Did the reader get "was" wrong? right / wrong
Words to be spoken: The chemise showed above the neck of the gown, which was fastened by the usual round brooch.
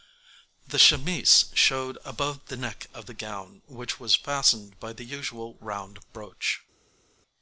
right